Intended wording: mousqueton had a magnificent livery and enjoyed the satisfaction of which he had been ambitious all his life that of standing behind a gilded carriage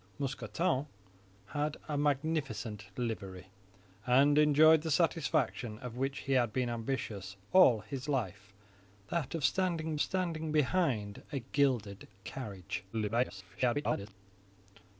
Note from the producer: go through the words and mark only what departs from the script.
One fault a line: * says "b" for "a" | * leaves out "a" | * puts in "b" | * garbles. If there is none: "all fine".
* puts in "standing"
* garbles